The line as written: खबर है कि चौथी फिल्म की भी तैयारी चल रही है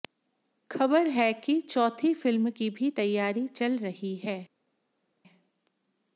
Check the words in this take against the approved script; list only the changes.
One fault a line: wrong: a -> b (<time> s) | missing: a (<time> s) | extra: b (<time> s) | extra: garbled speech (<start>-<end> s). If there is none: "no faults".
no faults